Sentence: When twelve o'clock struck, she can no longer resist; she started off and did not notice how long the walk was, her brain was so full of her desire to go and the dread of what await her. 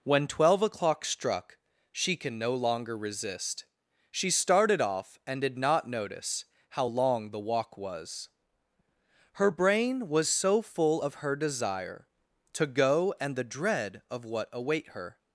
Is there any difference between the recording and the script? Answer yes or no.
no